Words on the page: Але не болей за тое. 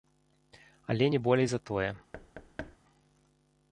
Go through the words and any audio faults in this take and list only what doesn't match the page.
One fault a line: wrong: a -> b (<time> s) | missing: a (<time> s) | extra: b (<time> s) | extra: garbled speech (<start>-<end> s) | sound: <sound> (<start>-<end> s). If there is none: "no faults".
sound: thud (2.1-2.8 s)